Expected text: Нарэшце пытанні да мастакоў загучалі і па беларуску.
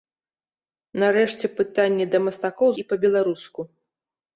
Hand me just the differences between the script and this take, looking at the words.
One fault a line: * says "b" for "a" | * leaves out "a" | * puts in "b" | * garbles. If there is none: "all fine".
* leaves out "загучалі"